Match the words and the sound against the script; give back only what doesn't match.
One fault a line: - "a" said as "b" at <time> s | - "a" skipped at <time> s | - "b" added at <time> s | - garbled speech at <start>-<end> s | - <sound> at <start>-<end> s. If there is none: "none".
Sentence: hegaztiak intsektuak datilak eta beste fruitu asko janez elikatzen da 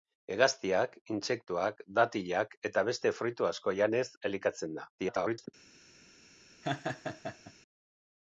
- garbled speech at 5.0-5.5 s
- laugh at 6.6-7.5 s